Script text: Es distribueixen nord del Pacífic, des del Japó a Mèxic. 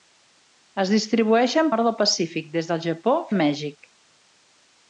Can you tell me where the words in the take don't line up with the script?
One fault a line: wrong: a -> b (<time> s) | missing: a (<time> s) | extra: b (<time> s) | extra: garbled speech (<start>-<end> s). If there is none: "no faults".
no faults